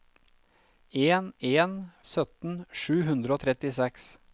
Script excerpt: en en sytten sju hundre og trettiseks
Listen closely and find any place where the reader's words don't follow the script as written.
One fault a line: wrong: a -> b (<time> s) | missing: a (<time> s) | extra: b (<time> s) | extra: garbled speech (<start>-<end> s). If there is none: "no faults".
no faults